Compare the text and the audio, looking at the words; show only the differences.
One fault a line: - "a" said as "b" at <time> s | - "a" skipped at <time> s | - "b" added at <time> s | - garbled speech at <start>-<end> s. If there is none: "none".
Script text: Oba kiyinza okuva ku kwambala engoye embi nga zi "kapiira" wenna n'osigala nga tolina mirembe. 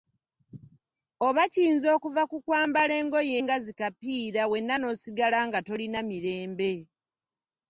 - "embi" skipped at 3.4 s